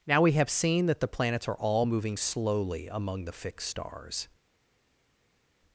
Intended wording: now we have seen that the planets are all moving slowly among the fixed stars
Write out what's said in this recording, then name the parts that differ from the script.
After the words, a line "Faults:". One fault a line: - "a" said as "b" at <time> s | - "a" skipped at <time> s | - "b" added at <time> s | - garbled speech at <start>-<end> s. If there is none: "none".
now we have seen that the planets are all moving slowly among the fixed stars
Faults:
none